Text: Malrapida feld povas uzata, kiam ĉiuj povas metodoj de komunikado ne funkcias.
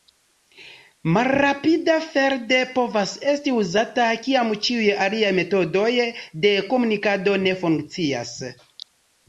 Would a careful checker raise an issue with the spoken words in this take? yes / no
yes